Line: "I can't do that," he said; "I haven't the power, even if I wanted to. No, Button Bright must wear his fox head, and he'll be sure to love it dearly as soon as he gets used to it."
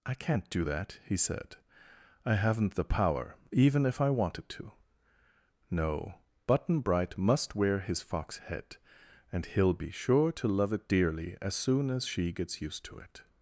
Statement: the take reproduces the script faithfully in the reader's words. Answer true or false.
false